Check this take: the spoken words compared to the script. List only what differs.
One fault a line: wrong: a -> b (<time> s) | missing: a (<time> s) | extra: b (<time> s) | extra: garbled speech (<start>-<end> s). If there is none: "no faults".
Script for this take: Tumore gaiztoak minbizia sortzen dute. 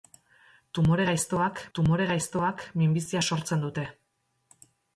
extra: tumore gaiztoak (1.8 s)